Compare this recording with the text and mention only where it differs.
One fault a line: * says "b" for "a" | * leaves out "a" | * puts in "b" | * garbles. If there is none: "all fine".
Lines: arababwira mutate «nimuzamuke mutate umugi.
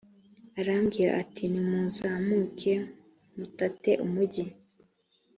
* says "ati" for "mutate"